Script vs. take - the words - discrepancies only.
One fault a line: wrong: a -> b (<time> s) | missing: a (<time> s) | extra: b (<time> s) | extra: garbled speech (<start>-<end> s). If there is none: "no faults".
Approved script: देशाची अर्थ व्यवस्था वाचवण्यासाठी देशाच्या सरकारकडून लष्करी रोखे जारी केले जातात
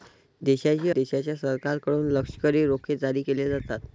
missing: अर्थ व्यवस्था वाचवण्यासाठी (0.9 s)